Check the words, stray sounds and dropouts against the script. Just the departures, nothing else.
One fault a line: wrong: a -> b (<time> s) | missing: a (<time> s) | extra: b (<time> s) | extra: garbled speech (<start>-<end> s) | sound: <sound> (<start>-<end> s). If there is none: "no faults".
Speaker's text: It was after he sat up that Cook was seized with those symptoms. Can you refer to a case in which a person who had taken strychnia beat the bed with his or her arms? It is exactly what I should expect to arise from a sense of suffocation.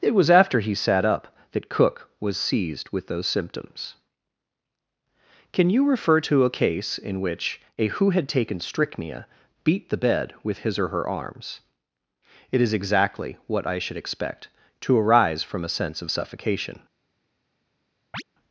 missing: person (7.9 s)
sound: chirp (18.1-18.2 s)